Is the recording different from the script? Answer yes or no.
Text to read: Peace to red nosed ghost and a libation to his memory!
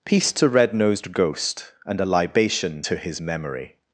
no